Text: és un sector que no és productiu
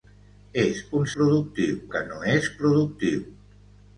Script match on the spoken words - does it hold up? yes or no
no